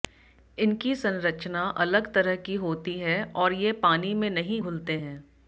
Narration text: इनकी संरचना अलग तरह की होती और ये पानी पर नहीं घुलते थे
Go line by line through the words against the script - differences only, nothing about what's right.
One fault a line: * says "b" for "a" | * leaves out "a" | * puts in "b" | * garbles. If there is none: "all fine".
* puts in "है"
* says "में" for "पर"
* says "हैं" for "थे"